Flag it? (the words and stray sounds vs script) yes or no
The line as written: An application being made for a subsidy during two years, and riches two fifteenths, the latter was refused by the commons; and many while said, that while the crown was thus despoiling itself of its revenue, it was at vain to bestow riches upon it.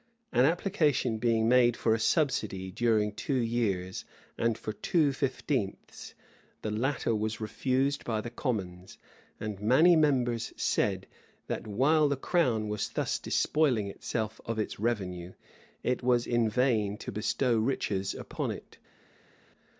yes